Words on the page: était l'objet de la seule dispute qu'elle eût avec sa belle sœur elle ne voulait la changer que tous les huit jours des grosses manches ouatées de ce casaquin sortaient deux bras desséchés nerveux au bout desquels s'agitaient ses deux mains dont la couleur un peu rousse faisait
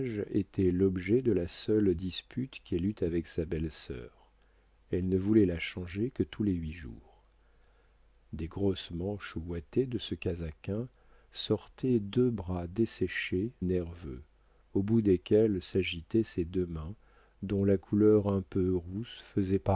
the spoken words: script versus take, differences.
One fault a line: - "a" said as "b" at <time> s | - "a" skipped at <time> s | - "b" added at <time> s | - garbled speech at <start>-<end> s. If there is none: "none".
none